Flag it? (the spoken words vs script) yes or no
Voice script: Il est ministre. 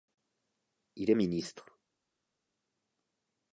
no